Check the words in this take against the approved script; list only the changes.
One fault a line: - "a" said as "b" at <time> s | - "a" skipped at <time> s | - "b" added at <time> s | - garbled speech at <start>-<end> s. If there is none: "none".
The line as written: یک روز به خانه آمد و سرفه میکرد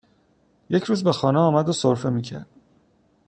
none